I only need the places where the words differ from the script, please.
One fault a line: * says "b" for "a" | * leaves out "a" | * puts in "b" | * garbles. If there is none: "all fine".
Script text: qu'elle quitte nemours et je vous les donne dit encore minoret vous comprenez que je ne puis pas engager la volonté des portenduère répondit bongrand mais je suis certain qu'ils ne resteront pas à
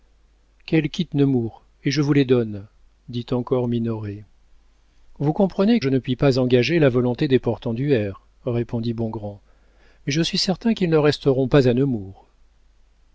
* leaves out "que"